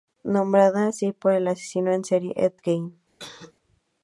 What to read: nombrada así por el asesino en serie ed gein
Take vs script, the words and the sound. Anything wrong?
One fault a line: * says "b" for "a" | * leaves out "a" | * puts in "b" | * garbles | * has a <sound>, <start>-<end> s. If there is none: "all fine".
* has a cough, 3.2-3.5 s